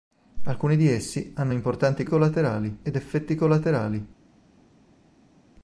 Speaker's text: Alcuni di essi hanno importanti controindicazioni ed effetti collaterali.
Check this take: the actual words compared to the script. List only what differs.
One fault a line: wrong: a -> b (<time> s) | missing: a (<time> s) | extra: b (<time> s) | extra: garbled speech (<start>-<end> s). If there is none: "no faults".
wrong: controindicazioni -> collaterali (2.0 s)